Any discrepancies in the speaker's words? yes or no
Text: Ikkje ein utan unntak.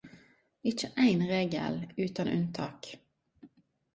yes